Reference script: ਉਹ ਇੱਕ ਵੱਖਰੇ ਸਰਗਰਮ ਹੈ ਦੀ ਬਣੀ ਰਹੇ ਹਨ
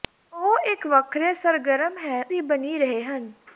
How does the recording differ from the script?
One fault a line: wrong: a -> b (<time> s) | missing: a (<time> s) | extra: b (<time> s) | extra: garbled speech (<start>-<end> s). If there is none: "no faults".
no faults